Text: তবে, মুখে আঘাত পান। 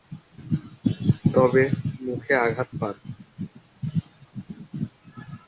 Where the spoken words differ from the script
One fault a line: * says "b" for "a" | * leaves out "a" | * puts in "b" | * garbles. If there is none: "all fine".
all fine